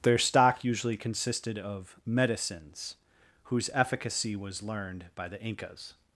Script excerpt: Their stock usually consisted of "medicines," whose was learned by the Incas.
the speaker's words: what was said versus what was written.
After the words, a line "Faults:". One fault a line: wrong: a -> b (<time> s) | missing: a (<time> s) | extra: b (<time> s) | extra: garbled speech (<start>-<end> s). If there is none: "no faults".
Their stock usually consisted of "medicines," whose efficacy was learned by the Incas.
Faults:
extra: efficacy (3.7 s)